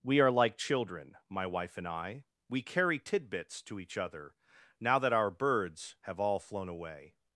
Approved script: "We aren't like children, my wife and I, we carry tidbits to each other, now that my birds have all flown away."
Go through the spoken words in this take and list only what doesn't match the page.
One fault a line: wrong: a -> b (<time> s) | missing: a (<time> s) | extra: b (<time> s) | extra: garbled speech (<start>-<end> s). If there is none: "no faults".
wrong: aren't -> are (0.2 s)
wrong: my -> our (5.1 s)